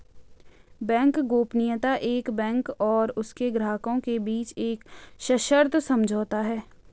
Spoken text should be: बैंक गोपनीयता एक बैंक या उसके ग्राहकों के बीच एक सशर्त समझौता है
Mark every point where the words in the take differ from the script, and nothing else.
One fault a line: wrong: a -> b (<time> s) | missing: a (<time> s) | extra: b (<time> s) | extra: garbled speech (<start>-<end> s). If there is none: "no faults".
wrong: या -> और (2.8 s)